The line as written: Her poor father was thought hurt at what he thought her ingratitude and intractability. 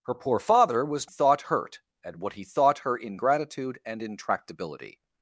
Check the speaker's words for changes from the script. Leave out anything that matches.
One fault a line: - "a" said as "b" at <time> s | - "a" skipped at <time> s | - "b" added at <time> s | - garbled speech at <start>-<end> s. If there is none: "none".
none